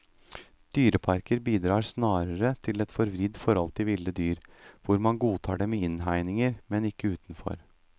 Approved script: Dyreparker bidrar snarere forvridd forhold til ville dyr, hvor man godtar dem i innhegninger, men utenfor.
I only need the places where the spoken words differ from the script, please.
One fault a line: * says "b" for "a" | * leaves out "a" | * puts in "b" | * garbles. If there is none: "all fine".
* puts in "til et"
* puts in "ikke"